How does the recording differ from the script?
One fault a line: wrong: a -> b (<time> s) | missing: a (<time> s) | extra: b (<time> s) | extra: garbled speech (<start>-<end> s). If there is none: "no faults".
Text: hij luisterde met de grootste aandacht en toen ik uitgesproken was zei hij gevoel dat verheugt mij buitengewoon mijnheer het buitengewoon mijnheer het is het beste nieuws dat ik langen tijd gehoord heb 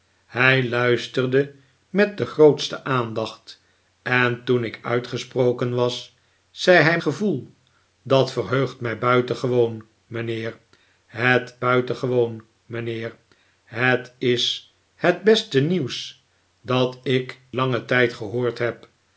no faults